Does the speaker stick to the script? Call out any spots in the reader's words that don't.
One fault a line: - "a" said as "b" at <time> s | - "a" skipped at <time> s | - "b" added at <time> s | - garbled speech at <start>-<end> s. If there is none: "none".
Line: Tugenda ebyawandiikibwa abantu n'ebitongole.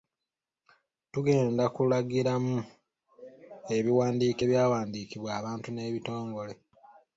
- "kulagiramu ebiwandiiko" added at 1.8 s